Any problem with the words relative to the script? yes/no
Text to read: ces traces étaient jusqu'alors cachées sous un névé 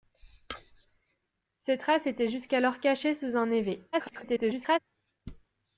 yes